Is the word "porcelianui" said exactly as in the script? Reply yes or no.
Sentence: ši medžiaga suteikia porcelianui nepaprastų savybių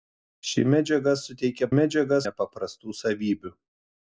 no